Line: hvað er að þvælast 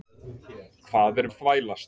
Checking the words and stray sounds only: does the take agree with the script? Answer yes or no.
yes